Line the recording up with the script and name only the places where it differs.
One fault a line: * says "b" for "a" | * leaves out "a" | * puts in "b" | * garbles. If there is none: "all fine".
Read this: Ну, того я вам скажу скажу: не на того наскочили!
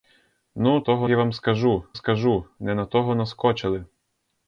all fine